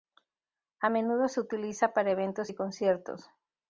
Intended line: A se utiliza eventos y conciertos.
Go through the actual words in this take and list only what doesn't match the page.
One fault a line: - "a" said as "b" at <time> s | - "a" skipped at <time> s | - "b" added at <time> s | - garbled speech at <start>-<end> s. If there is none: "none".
- "menudo" added at 0.9 s
- "para" added at 1.9 s